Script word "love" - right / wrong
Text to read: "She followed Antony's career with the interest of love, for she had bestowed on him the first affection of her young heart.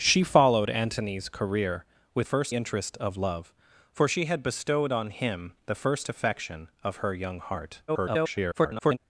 right